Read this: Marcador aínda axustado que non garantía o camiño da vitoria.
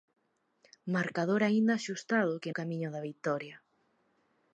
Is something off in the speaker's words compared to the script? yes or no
yes